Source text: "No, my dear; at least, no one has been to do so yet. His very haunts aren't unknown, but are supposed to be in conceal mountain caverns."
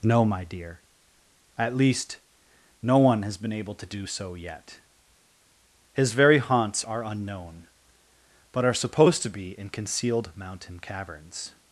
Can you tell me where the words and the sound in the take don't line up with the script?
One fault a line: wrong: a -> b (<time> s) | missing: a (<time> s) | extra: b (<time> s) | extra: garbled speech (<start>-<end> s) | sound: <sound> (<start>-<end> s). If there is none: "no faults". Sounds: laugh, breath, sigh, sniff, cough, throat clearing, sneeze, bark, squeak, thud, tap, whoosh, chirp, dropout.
extra: able (3.5 s)
wrong: aren't -> are (6.8 s)
wrong: conceal -> concealed (9.7 s)